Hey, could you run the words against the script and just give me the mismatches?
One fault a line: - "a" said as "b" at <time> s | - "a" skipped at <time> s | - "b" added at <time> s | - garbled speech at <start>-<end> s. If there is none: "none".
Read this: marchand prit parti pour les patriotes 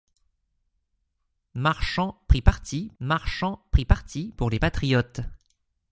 - "marchand prit parti" added at 3.0 s